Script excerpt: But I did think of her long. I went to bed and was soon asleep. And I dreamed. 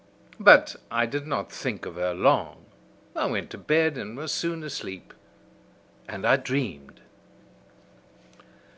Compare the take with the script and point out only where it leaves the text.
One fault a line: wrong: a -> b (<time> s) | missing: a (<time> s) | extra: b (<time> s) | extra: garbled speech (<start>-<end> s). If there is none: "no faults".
extra: not (1.3 s)